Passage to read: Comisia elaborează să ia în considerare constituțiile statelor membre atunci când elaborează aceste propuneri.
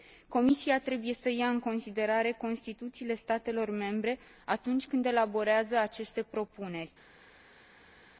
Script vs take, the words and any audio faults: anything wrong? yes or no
yes